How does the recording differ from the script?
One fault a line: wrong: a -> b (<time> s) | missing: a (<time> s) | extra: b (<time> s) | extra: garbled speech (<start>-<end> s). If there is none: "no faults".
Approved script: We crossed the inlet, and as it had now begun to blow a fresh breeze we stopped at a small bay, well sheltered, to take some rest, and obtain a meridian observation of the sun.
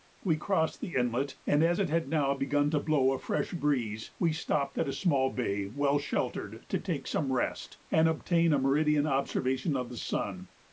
no faults